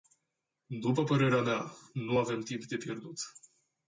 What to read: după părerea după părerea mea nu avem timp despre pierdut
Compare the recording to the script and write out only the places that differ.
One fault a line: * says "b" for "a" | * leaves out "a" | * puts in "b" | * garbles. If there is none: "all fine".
* leaves out "după părerea"
* says "de" for "despre"